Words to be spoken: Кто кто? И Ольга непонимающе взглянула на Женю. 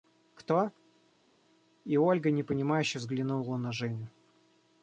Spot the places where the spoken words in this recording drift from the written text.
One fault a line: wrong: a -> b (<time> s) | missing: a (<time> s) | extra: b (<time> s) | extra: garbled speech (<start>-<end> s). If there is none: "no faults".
missing: кто (0.7 s)